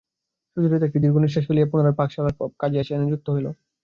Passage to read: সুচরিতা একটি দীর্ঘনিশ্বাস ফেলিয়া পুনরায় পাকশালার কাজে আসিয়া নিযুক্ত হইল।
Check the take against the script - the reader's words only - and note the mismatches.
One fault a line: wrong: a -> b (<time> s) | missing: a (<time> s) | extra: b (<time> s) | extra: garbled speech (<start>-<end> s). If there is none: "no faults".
no faults